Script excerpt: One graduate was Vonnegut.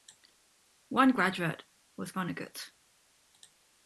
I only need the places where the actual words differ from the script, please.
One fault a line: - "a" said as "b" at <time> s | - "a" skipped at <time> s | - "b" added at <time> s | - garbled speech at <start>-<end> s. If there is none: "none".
none